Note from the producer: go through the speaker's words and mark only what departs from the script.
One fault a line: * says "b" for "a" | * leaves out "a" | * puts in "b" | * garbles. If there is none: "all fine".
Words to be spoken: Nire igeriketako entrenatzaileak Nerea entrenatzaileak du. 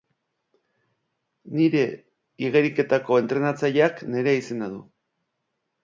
* says "izena" for "entrenatzaileak"